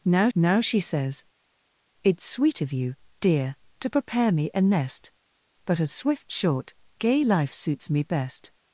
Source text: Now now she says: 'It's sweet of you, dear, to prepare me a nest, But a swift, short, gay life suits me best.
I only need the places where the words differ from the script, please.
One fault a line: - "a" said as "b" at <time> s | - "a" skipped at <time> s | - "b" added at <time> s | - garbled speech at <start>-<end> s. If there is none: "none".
none